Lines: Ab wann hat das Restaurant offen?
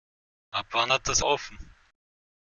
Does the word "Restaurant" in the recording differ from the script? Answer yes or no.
yes